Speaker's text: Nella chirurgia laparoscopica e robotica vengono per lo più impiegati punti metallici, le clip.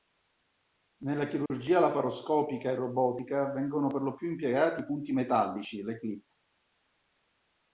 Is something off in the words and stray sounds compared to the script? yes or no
yes